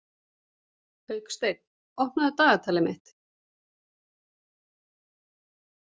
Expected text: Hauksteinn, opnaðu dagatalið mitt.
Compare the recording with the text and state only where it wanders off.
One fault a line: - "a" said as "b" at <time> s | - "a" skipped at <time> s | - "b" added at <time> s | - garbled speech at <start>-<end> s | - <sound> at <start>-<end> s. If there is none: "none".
none